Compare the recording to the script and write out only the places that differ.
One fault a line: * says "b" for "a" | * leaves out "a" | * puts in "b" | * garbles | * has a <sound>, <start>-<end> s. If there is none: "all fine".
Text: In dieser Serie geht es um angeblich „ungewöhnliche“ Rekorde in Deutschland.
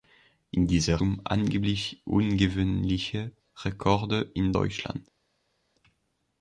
* leaves out "Serie geht es"